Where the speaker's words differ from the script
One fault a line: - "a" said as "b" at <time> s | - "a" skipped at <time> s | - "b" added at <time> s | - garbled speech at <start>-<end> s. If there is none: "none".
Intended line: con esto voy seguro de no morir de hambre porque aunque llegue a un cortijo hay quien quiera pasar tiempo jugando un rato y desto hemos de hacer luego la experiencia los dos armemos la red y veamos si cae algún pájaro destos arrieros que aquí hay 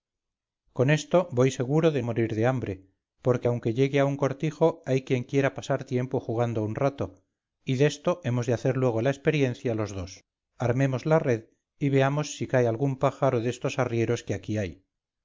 - "no" skipped at 2.0 s